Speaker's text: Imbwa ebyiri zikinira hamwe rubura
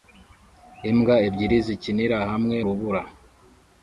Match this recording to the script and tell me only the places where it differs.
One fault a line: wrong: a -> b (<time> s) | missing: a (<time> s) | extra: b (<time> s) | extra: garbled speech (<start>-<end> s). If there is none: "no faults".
no faults